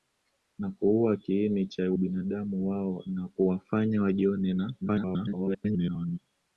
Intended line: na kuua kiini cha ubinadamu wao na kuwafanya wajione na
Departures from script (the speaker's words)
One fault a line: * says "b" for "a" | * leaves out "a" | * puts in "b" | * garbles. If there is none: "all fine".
* garbles